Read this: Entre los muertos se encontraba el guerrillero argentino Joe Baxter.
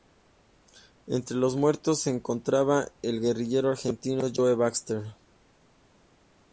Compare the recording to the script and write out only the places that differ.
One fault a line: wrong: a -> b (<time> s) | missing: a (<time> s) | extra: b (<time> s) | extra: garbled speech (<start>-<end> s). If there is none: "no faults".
no faults